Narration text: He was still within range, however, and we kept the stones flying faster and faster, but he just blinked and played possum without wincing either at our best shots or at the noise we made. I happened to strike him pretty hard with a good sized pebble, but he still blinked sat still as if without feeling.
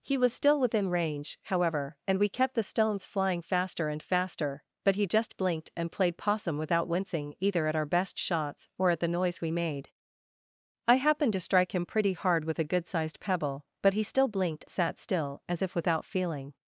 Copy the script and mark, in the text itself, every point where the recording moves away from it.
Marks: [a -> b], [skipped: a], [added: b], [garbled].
He was still within range, however, and we kept the stones flying faster and faster, but he just blinked and played possum without wincing either at our best shots or at the noise we made. I happened to strike him pretty hard with a good sized pebble, but he still blinked sat still as if without feeling.